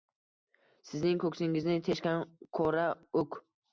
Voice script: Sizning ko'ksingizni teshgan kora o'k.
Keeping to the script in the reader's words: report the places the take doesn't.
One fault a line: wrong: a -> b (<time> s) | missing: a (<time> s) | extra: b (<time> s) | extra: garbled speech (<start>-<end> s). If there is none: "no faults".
no faults